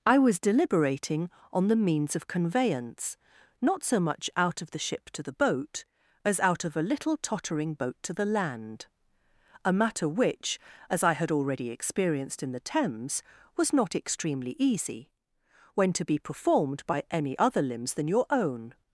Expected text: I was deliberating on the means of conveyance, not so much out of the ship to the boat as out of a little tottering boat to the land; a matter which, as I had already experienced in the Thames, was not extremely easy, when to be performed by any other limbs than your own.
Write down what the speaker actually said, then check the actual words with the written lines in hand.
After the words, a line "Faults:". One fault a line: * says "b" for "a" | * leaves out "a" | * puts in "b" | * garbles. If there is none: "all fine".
I was deliberating on the means of conveyance, not so much out of the ship to the boat as out of a little tottering boat to the land; a matter which, as I had already experienced in the Thames, was not extremely easy, when to be performed by any other limbs than your own.
Faults:
all fine